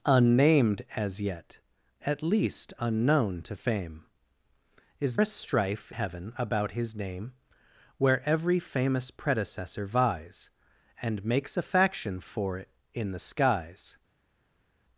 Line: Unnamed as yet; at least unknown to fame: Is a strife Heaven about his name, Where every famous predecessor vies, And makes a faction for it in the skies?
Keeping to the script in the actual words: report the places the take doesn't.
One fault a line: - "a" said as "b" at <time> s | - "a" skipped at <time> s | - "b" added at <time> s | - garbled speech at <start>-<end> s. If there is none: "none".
none